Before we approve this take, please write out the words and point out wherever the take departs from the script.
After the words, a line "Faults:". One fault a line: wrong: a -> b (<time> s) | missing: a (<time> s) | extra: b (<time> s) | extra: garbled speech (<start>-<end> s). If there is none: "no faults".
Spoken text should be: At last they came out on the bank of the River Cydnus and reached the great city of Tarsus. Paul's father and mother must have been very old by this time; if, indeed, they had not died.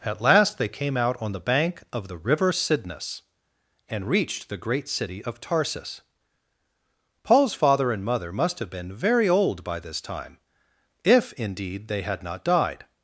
At last they came out on the bank of the River Cydnus and reached the great city of Tarsus. Paul's father and mother must have been very old by this time; if, indeed, they had not died.
Faults:
no faults